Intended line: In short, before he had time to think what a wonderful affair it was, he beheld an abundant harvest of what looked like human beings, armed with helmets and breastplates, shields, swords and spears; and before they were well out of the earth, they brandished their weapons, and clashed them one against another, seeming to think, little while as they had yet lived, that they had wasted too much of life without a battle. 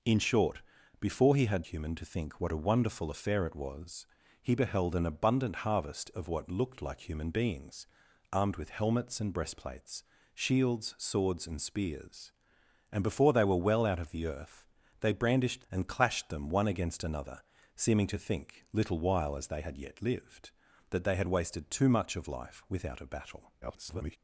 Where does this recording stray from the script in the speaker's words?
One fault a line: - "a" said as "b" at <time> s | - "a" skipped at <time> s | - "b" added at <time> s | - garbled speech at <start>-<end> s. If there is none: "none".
- "time" said as "human" at 1.7 s
- "their weapons" skipped at 15.7 s
- garbled speech at 23.6-24.2 s